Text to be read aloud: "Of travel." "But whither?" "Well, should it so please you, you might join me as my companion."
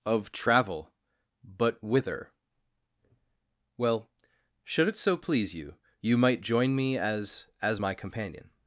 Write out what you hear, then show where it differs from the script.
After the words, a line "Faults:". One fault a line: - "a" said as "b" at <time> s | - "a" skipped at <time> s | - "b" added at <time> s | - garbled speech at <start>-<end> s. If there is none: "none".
"Of travel." "But whither?" "Well, should it so please you, you might join me as as my companion."
Faults:
- "as" added at 7.6 s